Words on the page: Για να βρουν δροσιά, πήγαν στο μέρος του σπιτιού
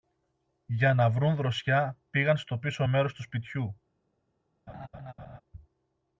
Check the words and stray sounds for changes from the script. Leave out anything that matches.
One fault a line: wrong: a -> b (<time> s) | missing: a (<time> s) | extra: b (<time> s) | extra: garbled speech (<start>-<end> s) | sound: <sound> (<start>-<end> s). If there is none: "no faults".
extra: πίσω (2.6 s)
sound: laugh (4.7-5.4 s)